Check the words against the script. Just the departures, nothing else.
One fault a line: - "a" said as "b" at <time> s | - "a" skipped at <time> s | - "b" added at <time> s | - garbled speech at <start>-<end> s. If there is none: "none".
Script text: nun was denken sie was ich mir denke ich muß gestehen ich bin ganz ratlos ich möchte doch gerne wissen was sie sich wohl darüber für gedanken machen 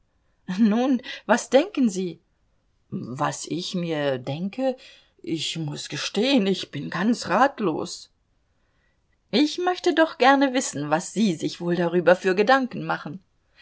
none